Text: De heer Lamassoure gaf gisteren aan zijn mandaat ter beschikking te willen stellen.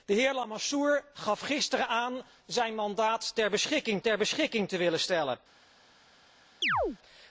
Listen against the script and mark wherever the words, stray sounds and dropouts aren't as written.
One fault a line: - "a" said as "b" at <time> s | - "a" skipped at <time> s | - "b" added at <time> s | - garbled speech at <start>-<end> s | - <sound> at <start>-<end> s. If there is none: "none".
- "ter beschikking" added at 4.0 s
- chirp at 6.6-7.0 s